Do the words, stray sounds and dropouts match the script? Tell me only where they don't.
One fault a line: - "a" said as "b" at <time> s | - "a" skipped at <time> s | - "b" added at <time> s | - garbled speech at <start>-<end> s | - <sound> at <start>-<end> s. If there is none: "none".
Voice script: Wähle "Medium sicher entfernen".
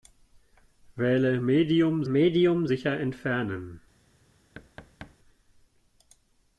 - "medium" added at 2.1 s
- thud at 4.5-5.2 s